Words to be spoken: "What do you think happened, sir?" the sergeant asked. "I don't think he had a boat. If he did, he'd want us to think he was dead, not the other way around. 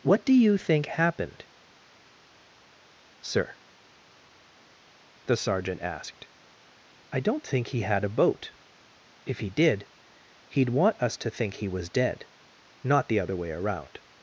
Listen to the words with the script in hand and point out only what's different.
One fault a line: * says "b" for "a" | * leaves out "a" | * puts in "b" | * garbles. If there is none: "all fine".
all fine